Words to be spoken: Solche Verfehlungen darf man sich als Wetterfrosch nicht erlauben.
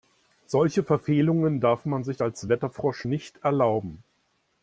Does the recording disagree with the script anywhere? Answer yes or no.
no